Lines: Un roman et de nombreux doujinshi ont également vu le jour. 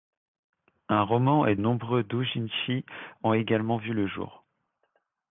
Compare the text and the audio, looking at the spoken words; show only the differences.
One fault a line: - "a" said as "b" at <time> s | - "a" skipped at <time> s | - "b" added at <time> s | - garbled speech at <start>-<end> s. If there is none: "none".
- "de" skipped at 1.6 s